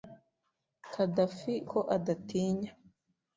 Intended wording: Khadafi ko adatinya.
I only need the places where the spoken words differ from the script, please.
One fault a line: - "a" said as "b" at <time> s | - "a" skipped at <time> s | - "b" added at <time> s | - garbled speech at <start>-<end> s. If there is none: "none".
none